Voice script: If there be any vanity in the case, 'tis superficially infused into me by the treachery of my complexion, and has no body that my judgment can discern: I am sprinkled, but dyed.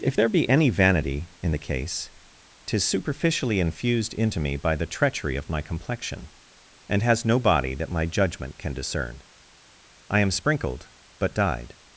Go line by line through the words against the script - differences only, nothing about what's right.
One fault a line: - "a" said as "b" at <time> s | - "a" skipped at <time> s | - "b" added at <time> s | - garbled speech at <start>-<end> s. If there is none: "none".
none